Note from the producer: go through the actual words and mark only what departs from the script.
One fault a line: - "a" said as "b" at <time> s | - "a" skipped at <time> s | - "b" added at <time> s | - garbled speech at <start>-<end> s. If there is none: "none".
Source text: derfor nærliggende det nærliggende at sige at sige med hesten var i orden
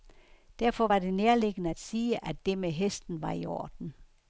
- "nærliggende" said as "var" at 0.8 s
- "sige" said as "det" at 2.5 s